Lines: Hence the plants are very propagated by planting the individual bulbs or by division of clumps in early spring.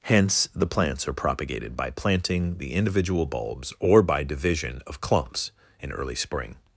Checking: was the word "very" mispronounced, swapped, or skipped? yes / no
yes